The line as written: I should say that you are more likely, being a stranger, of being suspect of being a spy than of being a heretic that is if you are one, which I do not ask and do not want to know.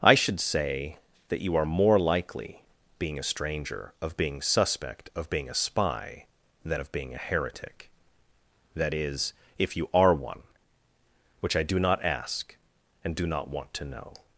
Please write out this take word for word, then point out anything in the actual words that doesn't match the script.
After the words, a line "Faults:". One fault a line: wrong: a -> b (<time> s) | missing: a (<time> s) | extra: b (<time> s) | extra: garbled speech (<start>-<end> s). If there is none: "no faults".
I should say that you are more likely, being a stranger, of being suspect of being a spy than of being a heretic that is if you are one, which I do not ask and do not want to know.
Faults:
no faults